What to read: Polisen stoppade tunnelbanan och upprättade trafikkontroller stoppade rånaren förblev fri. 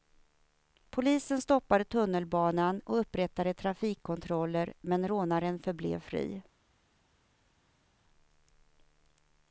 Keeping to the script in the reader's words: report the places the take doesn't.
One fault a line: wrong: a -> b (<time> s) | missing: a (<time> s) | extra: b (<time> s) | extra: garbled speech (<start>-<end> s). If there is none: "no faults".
wrong: stoppade -> men (4.8 s)